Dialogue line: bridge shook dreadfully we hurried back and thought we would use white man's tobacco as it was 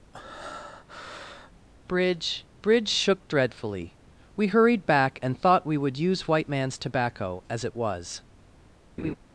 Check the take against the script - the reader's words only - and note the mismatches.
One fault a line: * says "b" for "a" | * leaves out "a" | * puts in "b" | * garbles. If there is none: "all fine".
* puts in "bridge"